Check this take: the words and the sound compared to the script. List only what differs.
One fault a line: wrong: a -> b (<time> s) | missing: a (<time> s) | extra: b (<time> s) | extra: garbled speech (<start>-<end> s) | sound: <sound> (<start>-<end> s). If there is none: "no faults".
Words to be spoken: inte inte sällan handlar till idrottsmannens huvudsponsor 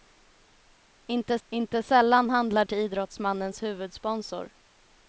no faults